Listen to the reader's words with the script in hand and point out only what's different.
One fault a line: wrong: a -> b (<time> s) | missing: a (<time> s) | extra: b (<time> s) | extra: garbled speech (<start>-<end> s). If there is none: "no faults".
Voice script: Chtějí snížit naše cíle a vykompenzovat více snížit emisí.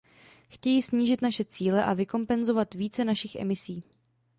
wrong: snížit -> našich (3.0 s)